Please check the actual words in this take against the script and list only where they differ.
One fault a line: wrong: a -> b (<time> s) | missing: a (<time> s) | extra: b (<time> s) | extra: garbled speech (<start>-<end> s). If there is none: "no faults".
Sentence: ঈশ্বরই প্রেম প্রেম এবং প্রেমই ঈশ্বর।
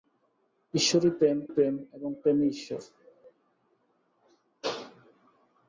no faults